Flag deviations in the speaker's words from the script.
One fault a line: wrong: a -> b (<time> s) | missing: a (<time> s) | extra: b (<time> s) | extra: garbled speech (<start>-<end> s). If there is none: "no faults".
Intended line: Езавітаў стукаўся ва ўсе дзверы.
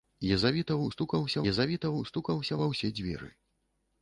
extra: езавітаў стукаўся (1.5 s)